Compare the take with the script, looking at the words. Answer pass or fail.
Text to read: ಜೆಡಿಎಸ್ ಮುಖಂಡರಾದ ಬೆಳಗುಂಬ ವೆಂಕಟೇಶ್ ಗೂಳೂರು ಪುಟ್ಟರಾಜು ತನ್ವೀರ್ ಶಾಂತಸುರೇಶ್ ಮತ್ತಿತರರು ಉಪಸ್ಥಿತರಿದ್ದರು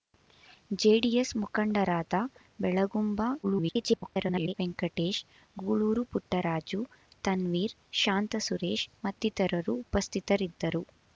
fail